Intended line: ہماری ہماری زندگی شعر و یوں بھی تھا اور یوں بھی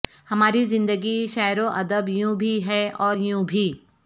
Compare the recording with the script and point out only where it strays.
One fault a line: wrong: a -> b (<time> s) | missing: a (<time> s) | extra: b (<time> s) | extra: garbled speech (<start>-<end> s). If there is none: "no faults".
missing: ہماری (0.6 s)
extra: ادب (1.7 s)
wrong: تھا -> ہے (2.6 s)